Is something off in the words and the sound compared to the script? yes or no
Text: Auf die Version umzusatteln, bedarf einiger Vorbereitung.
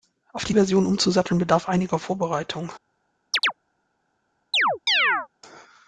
yes